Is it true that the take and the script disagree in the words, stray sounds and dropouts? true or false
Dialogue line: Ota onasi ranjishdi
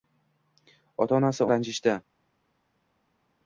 false